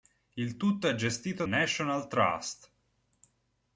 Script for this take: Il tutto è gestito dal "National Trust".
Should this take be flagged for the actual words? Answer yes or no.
yes